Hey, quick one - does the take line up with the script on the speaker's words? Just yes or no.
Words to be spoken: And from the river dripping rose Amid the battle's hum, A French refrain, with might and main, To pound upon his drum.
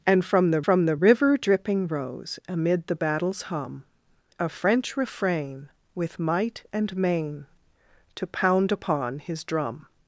no